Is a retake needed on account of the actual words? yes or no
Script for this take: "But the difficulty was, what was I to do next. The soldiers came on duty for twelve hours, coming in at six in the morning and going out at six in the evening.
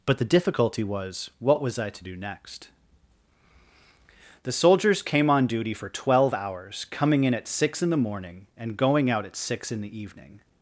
no